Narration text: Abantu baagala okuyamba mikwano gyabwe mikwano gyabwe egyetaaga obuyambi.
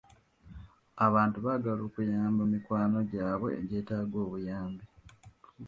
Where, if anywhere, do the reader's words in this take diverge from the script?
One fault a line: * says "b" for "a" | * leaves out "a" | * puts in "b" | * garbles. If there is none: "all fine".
* leaves out "mikwano gyabwe"